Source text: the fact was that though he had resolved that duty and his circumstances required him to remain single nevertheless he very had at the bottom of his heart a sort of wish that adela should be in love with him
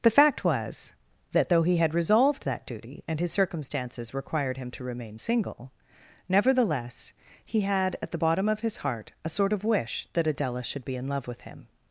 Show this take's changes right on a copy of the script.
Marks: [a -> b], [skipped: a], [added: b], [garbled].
the fact was that though he had resolved that duty and his circumstances required him to remain single nevertheless he [skipped: very] had at the bottom of his heart a sort of wish that adela should be in love with him